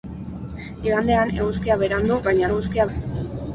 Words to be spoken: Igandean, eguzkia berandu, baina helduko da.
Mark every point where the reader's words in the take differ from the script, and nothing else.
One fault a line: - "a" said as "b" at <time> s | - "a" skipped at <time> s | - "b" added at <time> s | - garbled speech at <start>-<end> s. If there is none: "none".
- "helduko" said as "eguzkia" at 2.5 s